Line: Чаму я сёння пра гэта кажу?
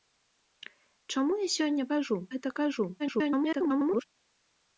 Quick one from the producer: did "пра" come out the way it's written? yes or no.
no